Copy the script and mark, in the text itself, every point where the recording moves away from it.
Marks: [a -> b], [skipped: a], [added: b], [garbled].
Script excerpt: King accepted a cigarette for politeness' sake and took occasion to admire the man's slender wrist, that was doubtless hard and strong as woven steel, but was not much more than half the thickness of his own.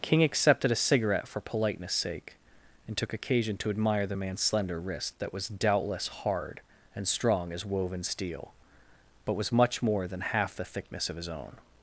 King accepted a cigarette for politeness' sake and took occasion to admire the man's slender wrist, that was doubtless hard and strong as woven steel, but was [skipped: not] much more than half the thickness of his own.